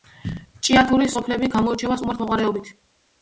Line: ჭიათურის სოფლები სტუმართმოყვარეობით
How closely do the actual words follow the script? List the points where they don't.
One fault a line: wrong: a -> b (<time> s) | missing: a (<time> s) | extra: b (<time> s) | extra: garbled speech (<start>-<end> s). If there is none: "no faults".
extra: გამოირჩევა (1.5 s)